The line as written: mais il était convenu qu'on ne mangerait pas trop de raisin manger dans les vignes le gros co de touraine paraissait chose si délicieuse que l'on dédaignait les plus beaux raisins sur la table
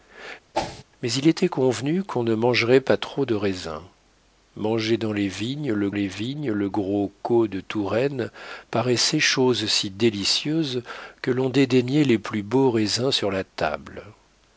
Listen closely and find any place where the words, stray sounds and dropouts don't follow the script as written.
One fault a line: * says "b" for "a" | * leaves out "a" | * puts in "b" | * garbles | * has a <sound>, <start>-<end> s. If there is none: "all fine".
* has a whoosh, 0.5-0.8 s
* puts in "les vignes le"